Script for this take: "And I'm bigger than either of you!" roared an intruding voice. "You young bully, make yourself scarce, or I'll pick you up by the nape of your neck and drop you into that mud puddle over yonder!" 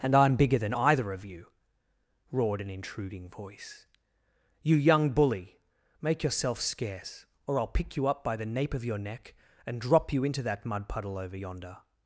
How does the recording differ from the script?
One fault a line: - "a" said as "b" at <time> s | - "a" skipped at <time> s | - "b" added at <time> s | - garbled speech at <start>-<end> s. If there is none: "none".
none